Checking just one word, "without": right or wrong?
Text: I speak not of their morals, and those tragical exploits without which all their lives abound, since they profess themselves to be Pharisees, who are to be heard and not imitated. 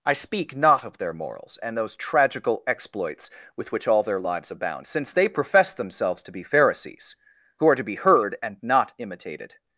wrong